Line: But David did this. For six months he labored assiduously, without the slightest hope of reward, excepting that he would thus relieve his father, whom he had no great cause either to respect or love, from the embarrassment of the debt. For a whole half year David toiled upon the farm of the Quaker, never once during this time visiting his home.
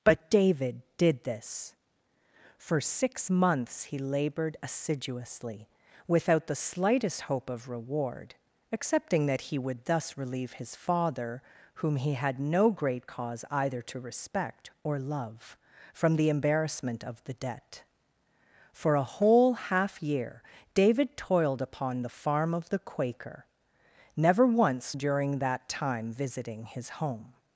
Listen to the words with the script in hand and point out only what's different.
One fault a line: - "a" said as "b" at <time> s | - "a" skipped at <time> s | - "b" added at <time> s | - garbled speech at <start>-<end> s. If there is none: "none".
- "this" said as "that" at 25.4 s